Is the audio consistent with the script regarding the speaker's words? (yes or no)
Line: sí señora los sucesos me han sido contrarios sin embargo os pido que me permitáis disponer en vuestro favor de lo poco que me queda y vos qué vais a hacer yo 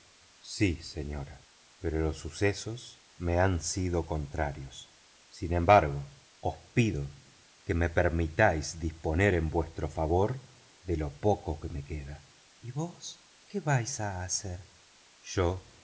no